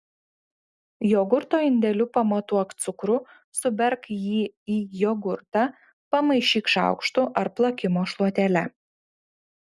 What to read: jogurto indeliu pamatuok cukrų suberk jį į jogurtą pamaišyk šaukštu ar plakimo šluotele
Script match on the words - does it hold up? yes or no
yes